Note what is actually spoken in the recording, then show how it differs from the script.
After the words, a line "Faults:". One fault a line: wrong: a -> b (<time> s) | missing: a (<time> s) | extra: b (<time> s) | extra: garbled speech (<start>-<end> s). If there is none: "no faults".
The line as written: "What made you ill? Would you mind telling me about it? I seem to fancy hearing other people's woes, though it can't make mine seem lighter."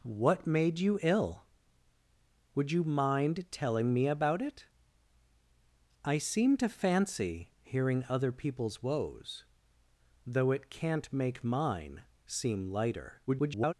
"What made you ill? Would you mind telling me about it? I seem to fancy hearing other people's woes, though it can't make mine seem lighter." [garbled]
Faults:
extra: garbled speech (13.3-13.7 s)